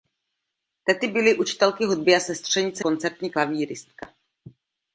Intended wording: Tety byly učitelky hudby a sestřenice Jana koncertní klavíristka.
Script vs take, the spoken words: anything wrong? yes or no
yes